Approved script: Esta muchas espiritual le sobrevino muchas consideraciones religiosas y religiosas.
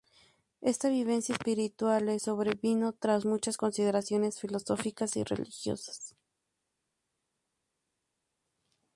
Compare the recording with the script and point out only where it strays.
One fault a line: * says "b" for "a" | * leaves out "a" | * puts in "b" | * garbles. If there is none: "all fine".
* says "vivencia" for "muchas"
* puts in "tras"
* says "filosóficas" for "religiosas"